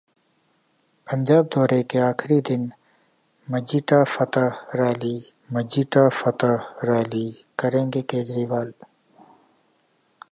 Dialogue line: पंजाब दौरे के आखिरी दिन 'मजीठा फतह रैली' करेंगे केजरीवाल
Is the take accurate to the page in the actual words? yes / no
no